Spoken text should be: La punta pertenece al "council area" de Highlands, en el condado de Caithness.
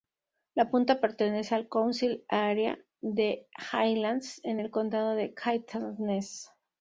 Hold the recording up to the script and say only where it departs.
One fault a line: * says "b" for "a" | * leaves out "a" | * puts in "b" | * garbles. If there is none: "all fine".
all fine